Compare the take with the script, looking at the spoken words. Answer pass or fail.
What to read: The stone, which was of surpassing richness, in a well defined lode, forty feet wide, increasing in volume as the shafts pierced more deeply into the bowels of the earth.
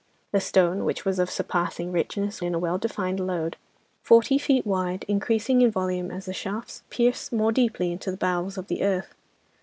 pass